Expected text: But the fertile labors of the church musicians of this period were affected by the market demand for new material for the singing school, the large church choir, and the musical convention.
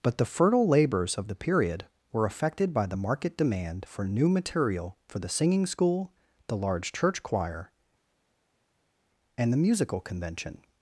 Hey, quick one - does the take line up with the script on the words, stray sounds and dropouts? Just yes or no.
no